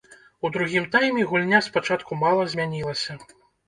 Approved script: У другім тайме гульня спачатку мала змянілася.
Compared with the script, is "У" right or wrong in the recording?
right